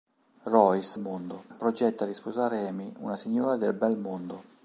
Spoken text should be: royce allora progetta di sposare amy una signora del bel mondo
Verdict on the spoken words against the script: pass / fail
fail